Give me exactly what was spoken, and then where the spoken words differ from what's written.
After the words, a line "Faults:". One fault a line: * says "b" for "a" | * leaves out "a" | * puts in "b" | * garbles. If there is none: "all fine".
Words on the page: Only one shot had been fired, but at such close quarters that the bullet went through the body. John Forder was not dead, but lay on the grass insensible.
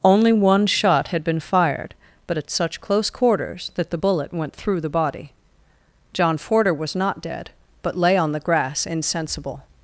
Only one shot had been fired, but at such close quarters that the bullet went through the body. John Forder was not dead, but lay on the grass insensible.
Faults:
all fine